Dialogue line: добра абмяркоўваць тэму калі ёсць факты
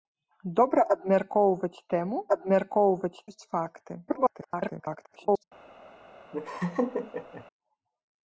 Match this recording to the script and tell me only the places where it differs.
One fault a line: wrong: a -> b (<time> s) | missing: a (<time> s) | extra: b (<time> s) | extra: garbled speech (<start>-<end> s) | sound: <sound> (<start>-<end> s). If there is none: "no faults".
wrong: калі -> абмяркоўваць (2.4 s)
extra: garbled speech (4.1-5.4 s)
sound: laugh (6.3-7.5 s)